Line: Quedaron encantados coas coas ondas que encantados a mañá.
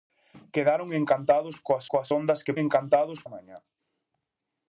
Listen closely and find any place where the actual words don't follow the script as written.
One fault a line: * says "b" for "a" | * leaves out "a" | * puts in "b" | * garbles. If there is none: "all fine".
all fine